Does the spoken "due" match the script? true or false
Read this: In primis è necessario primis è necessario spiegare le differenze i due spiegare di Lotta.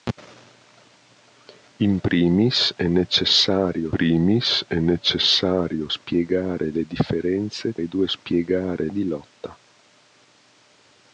true